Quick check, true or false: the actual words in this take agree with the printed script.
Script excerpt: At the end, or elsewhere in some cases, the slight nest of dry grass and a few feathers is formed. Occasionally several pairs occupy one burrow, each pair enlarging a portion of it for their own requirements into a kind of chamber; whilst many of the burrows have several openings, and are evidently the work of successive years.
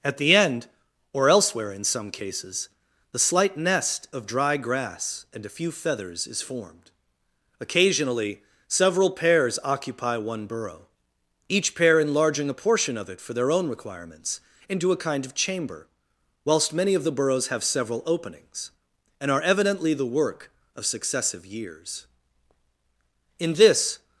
false